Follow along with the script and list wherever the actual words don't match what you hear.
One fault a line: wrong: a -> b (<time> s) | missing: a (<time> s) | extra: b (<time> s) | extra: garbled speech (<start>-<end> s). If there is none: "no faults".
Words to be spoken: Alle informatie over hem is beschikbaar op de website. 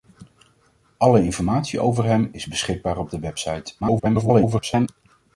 extra: garbled speech (3.8-4.9 s)